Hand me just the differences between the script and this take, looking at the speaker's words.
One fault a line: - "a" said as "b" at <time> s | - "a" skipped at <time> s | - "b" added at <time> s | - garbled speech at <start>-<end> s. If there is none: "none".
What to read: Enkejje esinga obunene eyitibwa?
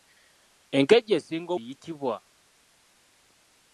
- "obunene" skipped at 1.5 s